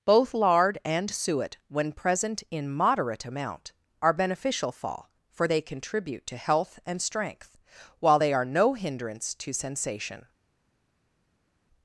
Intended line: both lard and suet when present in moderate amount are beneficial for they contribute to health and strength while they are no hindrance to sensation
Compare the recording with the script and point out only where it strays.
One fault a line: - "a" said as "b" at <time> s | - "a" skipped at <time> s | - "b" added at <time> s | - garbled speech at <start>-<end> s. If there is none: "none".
- "fall" added at 4.7 s